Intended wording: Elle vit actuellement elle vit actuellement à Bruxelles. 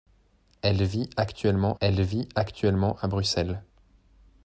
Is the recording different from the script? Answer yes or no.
no